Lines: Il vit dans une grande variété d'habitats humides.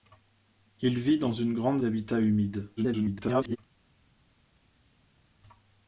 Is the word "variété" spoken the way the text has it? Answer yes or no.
no